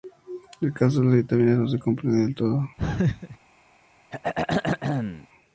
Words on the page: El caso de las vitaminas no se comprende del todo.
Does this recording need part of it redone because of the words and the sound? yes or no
yes